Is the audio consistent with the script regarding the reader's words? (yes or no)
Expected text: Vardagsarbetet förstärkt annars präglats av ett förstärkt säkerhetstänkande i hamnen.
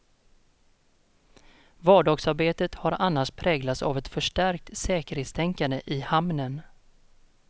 no